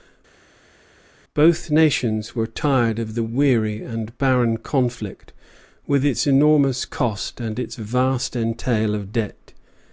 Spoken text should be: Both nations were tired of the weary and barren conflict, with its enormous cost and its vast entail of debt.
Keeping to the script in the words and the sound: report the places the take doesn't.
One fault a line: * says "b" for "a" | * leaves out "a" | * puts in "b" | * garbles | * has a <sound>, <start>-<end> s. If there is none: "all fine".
all fine